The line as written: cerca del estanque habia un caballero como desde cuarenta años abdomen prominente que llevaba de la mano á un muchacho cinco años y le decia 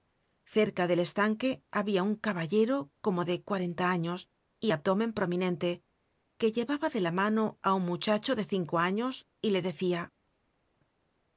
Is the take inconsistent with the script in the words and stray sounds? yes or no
yes